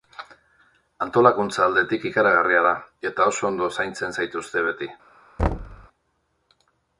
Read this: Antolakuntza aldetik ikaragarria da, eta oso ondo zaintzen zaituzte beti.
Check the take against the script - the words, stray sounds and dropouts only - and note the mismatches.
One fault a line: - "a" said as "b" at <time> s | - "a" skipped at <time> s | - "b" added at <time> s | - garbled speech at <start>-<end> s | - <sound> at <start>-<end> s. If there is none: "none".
- thud at 5.4-5.9 s